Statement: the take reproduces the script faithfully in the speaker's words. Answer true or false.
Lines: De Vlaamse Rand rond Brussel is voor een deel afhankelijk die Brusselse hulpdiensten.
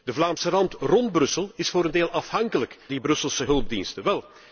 true